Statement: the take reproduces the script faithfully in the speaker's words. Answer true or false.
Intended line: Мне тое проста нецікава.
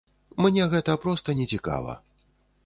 false